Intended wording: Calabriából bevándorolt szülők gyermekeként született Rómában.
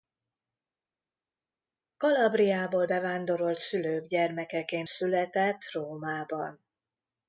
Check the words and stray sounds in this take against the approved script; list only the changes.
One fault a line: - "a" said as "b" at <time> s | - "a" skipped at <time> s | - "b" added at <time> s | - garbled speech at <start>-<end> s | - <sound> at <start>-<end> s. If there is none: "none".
none